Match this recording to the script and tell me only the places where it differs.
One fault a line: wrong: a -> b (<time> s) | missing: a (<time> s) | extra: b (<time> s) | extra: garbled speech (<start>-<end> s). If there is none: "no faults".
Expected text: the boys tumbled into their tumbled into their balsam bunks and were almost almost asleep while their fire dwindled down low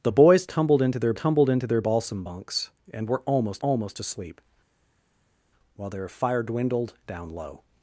no faults